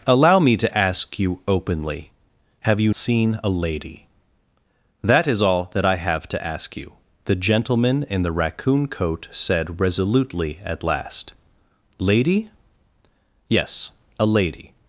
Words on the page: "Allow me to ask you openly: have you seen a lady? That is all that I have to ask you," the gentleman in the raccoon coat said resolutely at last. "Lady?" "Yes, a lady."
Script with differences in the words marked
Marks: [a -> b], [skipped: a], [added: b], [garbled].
"Allow me to ask you openly: have you seen a lady? That is all that I have to ask you," the gentleman in the raccoon coat said resolutely at last. "Lady?" "Yes, a lady."